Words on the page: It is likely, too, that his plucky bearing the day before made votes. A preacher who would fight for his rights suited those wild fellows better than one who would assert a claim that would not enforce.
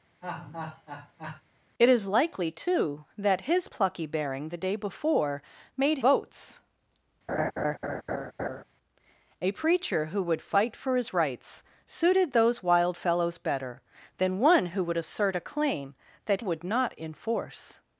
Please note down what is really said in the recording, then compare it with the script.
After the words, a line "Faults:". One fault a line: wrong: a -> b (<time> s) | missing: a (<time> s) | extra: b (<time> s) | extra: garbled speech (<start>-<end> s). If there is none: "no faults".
It is likely, too, that his plucky bearing the day before made votes. A preacher who would fight for his rights suited those wild fellows better than one who would assert a claim that would not enforce.
Faults:
no faults